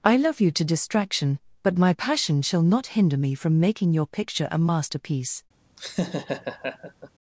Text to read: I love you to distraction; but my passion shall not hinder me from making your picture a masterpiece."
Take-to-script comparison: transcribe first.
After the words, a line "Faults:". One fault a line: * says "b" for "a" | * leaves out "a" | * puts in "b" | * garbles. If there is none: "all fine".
I love you to distraction; but my passion shall not hinder me from making your picture a masterpiece."
Faults:
all fine